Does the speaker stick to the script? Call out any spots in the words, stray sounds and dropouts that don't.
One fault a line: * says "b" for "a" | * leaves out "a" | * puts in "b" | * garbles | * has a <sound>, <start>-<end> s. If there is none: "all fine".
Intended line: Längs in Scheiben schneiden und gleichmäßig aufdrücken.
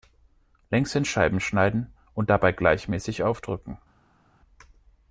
* puts in "dabei"